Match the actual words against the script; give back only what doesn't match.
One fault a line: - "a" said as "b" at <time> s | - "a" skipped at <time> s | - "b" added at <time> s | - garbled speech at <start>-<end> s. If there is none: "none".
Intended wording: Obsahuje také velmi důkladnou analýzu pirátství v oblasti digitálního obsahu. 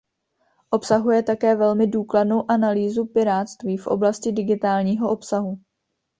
none